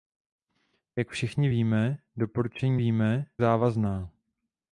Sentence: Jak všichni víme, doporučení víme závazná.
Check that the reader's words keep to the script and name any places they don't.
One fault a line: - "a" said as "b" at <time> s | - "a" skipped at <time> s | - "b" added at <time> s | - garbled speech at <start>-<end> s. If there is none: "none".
none